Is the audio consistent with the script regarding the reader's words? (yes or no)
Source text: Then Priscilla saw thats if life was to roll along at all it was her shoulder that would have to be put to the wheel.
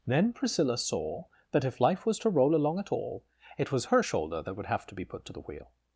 no